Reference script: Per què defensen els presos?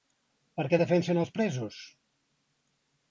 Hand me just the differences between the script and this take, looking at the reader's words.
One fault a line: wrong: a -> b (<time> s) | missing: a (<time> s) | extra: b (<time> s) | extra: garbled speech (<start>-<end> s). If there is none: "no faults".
no faults